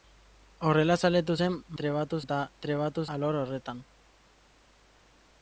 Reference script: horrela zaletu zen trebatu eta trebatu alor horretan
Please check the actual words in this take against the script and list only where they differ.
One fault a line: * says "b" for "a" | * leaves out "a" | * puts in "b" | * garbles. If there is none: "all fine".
all fine